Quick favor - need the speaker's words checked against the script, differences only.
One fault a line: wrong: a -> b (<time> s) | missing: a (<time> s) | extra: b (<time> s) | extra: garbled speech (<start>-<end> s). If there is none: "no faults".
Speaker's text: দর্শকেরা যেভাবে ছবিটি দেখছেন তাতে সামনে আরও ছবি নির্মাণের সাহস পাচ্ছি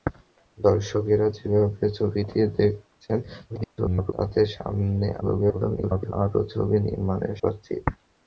extra: garbled speech (3.5-4.1 s)
extra: garbled speech (5.2-6.1 s)
missing: সাহস (7.3 s)